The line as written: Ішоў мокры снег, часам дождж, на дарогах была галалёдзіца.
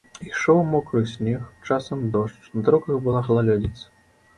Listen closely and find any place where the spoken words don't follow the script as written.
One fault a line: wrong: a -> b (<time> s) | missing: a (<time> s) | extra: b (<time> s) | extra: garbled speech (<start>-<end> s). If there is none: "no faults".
no faults